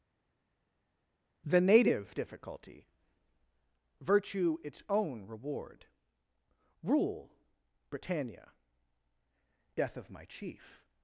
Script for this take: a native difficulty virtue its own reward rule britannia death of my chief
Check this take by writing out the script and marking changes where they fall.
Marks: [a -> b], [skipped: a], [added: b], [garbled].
[a -> the] native difficulty virtue its own reward rule britannia death of my chief